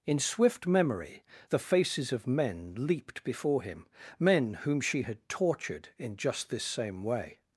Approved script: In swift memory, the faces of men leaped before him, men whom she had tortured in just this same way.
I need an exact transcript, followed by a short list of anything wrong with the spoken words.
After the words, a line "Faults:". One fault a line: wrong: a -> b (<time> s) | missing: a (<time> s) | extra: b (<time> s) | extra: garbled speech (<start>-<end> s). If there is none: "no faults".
In swift memory, the faces of men leaped before him, men whom she had tortured in just this same way.
Faults:
no faults